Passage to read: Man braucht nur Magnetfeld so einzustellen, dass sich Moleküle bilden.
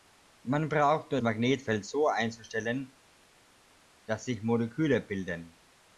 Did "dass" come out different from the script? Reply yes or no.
no